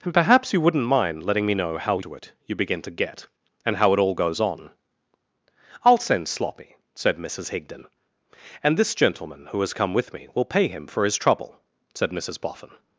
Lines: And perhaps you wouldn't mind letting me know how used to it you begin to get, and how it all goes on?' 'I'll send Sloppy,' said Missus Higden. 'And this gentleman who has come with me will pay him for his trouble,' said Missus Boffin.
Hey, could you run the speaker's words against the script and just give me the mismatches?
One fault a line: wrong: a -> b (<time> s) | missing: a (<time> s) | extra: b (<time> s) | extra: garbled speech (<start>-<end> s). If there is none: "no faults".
missing: used (2.0 s)